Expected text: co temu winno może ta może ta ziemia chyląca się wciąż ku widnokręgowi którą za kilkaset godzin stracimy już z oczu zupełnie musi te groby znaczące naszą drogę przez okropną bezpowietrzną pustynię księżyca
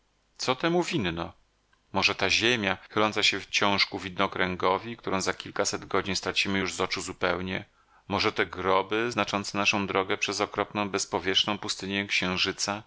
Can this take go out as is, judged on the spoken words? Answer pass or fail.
fail